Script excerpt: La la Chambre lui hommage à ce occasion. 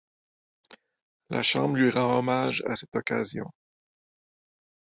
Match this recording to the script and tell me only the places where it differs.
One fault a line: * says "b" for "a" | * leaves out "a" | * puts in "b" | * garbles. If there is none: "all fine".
* leaves out "la"
* puts in "rend"
* says "cette" for "ce"